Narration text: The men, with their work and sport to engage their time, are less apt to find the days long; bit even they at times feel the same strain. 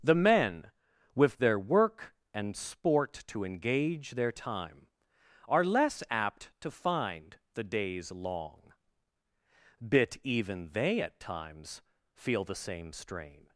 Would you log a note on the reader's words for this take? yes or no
no